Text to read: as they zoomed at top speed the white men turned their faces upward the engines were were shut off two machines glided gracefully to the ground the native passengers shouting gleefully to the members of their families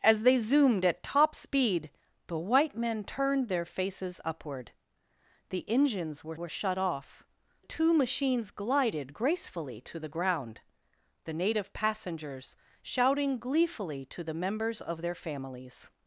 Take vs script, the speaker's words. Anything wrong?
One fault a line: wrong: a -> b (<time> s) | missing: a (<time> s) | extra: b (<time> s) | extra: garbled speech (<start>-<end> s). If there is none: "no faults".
no faults